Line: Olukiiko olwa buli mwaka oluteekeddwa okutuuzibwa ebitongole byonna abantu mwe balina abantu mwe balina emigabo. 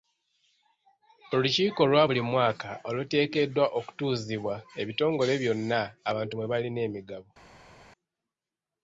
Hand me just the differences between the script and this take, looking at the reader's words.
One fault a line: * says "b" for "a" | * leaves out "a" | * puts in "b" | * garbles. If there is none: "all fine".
* leaves out "abantu mwe balina"